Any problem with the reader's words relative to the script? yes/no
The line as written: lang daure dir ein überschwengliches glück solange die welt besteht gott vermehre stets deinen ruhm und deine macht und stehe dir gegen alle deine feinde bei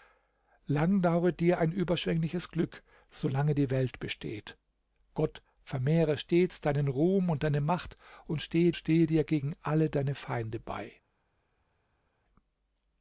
yes